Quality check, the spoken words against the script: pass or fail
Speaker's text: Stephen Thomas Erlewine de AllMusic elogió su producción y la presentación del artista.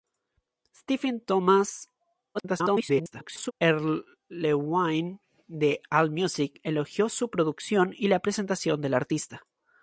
fail